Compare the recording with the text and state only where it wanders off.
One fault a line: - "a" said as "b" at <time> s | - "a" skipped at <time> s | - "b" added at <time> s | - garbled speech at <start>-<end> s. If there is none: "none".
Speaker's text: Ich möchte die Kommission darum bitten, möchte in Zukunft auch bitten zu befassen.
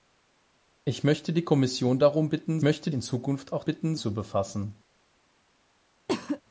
none